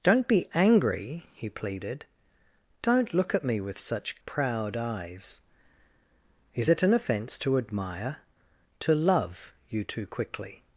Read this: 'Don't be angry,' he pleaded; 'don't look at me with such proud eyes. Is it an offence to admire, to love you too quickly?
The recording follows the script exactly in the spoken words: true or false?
true